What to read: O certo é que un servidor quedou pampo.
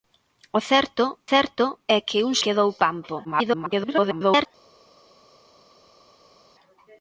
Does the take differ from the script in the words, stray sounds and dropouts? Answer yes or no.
yes